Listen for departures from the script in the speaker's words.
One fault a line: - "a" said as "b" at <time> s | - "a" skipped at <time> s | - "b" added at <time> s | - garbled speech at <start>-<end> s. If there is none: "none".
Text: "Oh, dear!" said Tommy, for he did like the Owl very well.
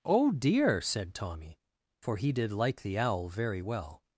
none